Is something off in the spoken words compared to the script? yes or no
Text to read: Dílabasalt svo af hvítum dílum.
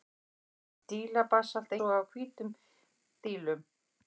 no